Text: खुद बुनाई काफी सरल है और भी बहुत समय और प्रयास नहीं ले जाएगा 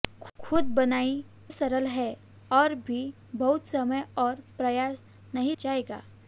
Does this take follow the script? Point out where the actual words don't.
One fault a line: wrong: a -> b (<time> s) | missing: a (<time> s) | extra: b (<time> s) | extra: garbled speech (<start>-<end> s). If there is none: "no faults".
missing: काफी (1.2 s)
missing: ले (5.6 s)